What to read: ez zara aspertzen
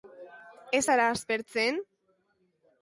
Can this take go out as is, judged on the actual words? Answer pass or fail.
pass